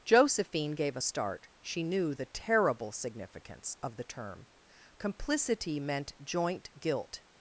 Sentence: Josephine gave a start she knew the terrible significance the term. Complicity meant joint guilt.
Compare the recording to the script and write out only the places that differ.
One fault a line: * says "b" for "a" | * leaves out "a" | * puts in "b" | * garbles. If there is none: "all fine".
* puts in "of"